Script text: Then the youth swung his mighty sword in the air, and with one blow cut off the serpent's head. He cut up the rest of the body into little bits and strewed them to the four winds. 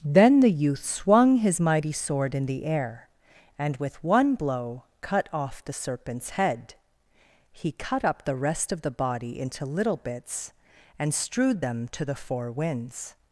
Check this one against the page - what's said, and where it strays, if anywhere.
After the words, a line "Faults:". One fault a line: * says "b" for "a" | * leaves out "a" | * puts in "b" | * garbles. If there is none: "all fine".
Then the youth swung his mighty sword in the air, and with one blow cut off the serpent's head. He cut up the rest of the body into little bits and strewed them to the four winds.
Faults:
all fine